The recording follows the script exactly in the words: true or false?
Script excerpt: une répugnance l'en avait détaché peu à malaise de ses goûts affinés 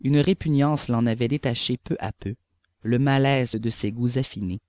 false